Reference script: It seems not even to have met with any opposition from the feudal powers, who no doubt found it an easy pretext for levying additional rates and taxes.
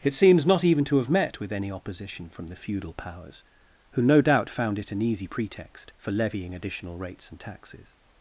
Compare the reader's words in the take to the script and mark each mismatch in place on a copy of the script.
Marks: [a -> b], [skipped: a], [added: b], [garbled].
It seems not even to have met with any opposition from the feudal powers, who no doubt found it an easy pretext for levying additional rates and taxes.